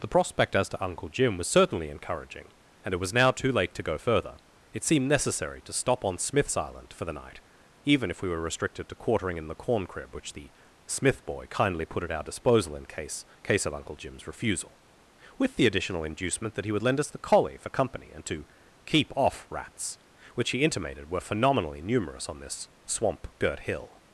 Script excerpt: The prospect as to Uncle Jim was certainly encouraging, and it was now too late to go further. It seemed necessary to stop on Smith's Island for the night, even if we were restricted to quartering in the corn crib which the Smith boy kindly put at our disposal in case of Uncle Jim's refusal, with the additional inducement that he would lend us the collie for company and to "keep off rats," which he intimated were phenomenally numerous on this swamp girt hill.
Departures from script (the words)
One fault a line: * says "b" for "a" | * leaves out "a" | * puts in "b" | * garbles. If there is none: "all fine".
* puts in "case"